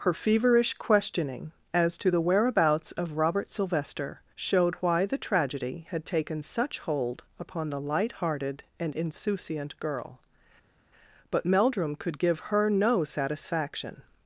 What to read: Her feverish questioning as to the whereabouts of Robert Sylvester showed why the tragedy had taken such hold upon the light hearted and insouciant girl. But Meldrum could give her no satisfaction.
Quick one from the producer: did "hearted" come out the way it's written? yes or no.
yes